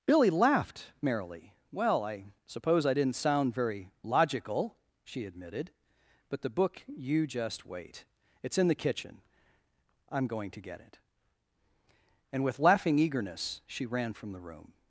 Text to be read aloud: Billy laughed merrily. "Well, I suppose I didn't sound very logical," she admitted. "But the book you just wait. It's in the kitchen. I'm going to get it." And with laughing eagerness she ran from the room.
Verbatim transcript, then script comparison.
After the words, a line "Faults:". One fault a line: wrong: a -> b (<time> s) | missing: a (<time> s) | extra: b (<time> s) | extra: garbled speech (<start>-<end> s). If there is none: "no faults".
Billy laughed merrily. "Well, I suppose I didn't sound very logical," she admitted. "But the book you just wait. It's in the kitchen. I'm going to get it." And with laughing eagerness she ran from the room.
Faults:
no faults